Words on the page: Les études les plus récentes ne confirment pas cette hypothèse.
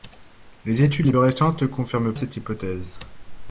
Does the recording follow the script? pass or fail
fail